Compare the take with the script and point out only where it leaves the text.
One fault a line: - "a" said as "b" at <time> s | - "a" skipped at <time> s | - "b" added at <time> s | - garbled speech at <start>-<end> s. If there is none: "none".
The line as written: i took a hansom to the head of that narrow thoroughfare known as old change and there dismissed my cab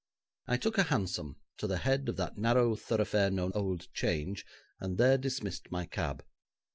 - "as" skipped at 3.5 s